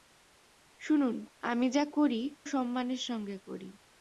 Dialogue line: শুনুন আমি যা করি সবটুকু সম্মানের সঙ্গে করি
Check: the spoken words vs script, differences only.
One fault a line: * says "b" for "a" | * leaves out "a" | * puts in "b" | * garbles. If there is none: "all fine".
* leaves out "সবটুকু"